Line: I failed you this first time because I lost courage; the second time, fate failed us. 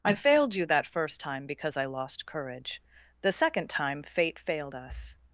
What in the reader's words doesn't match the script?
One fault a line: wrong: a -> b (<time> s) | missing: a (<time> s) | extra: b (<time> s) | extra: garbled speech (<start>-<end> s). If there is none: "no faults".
wrong: this -> that (0.7 s)